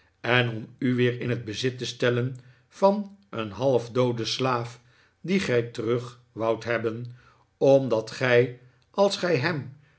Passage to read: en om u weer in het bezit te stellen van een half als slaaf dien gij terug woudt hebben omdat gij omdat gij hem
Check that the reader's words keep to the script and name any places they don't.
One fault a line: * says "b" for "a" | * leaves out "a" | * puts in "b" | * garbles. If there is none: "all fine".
* says "dooden" for "als"
* says "als" for "omdat"